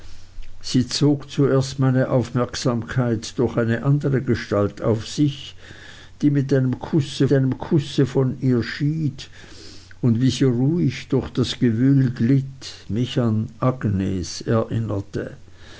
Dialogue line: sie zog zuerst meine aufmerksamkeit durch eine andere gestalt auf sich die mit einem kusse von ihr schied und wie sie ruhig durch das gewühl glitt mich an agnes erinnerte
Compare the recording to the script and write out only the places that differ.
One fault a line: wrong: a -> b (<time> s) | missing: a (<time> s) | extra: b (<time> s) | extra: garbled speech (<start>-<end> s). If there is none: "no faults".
extra: einem kusse (7.3 s)